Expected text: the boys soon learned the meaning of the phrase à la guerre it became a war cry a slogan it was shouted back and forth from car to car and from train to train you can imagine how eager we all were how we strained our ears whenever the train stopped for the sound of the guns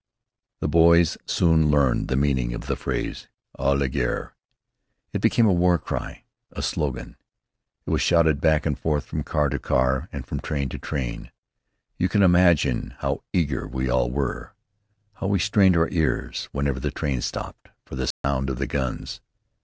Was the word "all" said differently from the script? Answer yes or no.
no